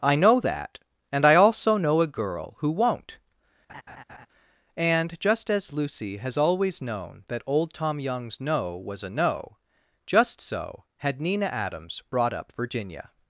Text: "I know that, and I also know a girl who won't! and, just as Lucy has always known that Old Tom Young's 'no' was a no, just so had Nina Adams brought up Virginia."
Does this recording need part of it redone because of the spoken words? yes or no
no